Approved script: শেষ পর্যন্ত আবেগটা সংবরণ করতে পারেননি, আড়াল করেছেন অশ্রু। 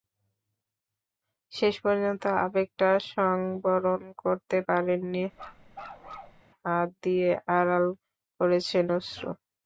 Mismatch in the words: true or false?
true